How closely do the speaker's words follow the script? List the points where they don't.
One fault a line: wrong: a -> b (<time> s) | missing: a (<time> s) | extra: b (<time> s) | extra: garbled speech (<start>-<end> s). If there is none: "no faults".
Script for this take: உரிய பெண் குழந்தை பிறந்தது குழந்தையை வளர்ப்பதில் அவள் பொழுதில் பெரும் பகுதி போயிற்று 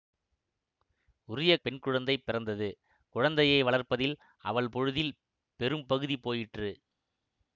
no faults